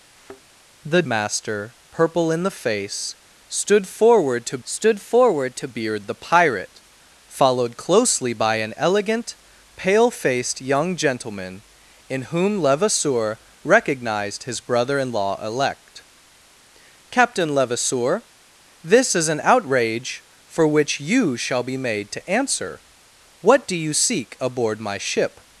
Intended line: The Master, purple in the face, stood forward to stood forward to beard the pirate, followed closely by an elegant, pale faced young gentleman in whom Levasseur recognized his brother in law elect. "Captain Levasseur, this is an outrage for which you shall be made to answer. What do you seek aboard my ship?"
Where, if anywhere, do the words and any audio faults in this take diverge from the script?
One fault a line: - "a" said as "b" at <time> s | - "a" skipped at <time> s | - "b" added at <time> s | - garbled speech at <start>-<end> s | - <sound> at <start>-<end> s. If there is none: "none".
- thud at 0.1-0.4 s